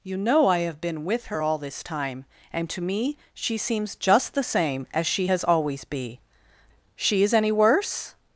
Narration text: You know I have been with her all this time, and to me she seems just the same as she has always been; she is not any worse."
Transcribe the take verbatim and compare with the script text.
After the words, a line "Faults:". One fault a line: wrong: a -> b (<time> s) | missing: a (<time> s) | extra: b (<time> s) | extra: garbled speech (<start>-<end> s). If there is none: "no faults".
You know I have been with her all this time, and to me she seems just the same as she has always be; she is any worse."
Faults:
wrong: been -> be (5.8 s)
missing: not (7.3 s)